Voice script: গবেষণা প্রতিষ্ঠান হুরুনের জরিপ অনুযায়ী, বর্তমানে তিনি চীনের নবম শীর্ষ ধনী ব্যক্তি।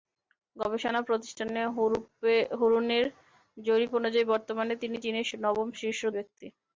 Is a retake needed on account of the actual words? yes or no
yes